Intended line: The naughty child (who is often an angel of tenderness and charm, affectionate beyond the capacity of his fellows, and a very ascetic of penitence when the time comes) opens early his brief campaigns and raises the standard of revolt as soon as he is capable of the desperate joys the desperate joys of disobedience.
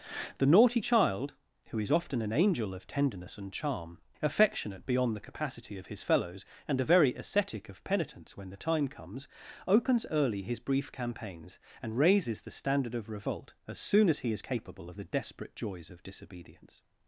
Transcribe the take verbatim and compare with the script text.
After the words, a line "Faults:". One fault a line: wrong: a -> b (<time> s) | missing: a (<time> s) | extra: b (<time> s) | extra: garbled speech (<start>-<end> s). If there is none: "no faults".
The naughty child (who is often an angel of tenderness and charm, affectionate beyond the capacity of his fellows, and a very ascetic of penitence when the time comes) opens early his brief campaigns and raises the standard of revolt as soon as he is capable of the desperate joys of disobedience.
Faults:
missing: the desperate joys (15.9 s)